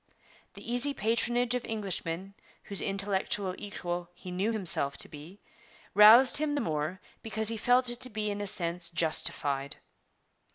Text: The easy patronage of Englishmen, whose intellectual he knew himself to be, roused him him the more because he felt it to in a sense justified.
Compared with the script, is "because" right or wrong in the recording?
right